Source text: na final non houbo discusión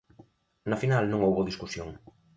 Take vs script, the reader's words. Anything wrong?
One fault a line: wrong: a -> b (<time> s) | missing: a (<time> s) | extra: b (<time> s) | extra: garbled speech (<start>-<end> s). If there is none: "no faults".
no faults